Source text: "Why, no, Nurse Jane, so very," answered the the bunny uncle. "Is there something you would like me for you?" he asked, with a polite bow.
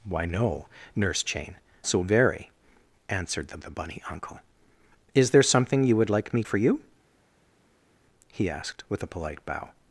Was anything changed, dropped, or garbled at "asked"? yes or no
no